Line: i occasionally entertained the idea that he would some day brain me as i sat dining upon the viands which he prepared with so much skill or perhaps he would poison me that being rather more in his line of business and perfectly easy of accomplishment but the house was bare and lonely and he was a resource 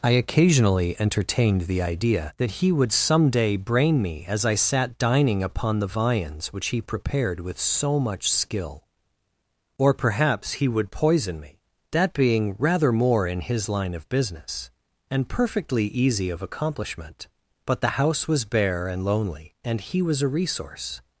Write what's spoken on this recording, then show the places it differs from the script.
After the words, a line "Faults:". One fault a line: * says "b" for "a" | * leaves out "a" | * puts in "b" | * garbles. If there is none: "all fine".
i occasionally entertained the idea that he would some day brain me as i sat dining upon the viands which he prepared with so much skill or perhaps he would poison me that being rather more in his line of business and perfectly easy of accomplishment but the house was bare and lonely and he was a resource
Faults:
all fine